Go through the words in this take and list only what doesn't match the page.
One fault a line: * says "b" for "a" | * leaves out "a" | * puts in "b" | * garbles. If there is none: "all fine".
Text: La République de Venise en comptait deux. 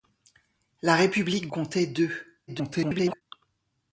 * leaves out "de Venise en"
* garbles